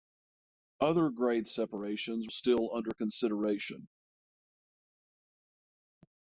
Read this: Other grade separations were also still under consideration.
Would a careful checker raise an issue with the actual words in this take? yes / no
yes